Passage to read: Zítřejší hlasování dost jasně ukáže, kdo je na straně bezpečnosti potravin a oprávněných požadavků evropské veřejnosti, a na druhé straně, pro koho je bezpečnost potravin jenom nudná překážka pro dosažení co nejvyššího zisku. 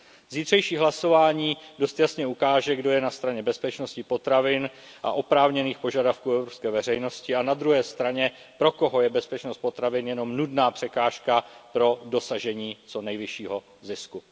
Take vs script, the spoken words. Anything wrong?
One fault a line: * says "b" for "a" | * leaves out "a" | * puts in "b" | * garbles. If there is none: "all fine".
all fine